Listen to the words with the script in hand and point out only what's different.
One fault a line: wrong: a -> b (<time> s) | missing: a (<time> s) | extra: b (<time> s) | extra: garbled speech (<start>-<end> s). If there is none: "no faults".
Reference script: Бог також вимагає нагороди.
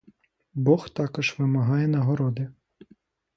no faults